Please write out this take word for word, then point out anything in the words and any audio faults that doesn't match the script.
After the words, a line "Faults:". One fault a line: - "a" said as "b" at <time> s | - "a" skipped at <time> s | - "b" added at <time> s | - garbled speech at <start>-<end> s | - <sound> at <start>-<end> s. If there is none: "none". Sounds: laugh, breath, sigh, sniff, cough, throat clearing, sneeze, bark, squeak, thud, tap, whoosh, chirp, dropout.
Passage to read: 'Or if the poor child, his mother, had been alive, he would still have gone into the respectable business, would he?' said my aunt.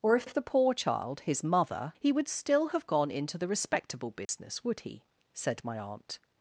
'Or if if the poor child, his mother, he would still have gone into the respectable business, would he?' said my aunt.
Faults:
- "if" added at 0.2 s
- "had been alive" skipped at 1.9 s
- dropout at 4.2-4.3 s